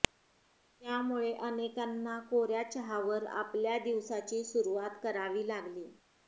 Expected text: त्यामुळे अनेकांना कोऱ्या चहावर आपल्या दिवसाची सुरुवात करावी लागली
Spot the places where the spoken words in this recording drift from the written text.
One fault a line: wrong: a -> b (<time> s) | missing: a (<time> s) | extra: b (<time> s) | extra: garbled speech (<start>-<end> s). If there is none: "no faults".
no faults